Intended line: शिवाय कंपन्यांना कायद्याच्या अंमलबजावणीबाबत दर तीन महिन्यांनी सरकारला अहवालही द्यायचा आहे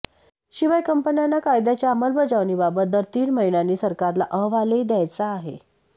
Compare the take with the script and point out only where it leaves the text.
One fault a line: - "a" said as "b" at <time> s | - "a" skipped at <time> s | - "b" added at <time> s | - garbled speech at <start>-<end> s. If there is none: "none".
none